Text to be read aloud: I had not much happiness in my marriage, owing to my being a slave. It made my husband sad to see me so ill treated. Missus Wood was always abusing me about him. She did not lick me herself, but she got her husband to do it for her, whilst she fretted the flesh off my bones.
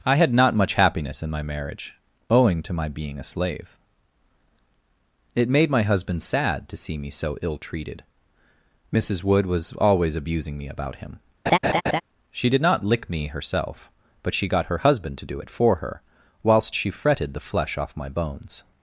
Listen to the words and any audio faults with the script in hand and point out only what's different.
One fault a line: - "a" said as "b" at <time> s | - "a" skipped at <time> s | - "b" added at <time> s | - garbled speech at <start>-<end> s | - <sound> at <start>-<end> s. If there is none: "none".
- laugh at 11.5-12.0 s